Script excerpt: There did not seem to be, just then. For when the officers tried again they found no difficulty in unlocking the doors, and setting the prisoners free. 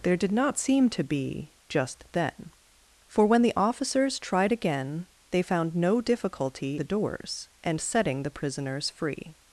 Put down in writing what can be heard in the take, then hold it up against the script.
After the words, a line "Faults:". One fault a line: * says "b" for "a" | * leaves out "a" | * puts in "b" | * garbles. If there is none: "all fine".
There did not seem to be, just then. For when the officers tried again they found no difficulty the doors, and setting the prisoners free.
Faults:
* leaves out "in unlocking"